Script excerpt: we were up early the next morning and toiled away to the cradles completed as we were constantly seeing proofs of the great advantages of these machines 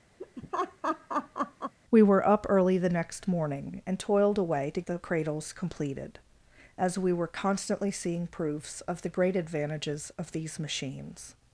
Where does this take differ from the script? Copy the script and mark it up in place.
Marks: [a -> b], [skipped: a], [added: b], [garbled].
we were up early the next morning and toiled away to the cradles completed as we were constantly seeing proofs of the great advantages of these machines